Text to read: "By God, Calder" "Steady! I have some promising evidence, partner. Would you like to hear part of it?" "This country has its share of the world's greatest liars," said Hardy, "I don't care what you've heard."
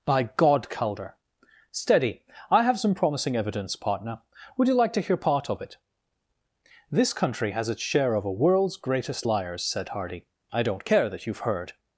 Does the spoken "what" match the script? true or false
false